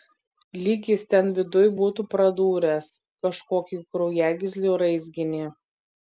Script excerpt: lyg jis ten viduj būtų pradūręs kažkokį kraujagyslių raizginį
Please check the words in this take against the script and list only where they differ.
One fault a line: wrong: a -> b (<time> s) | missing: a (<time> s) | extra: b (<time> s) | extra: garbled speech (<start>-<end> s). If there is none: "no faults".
no faults